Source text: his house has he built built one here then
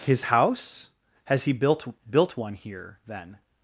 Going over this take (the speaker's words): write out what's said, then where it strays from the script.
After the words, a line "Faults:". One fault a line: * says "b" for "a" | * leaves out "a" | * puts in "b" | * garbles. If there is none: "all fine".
his house has he built built one here then
Faults:
all fine